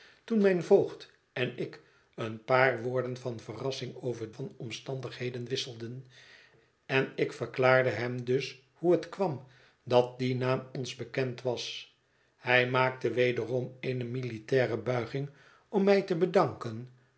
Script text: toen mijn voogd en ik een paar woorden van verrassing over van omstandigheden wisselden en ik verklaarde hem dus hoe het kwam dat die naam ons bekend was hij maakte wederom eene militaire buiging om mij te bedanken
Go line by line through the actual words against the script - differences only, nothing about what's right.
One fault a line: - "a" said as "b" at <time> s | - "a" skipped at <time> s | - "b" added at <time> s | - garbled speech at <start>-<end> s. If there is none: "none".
none